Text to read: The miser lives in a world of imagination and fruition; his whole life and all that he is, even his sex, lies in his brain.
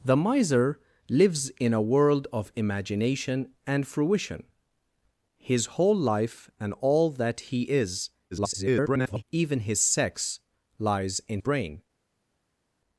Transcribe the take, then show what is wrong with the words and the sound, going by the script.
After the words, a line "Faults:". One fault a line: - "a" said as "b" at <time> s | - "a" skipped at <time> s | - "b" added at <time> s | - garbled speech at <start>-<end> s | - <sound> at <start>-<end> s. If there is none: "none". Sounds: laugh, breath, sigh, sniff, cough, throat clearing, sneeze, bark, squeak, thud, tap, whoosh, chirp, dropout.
The miser lives in a world of imagination and fruition; his whole life and all that he is, [garbled] even his sex, lies in brain.
Faults:
- garbled speech at 8.3-9.2 s
- "his" skipped at 11.4 s